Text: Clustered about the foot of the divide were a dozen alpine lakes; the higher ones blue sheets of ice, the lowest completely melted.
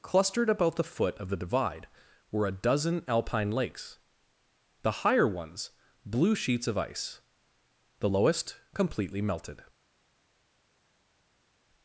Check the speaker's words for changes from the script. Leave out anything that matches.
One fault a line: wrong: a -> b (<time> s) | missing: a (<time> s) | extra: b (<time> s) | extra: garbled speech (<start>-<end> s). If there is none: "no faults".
no faults